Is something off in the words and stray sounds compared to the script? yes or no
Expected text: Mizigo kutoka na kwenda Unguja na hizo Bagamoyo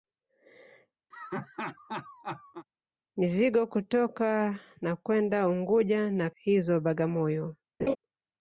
yes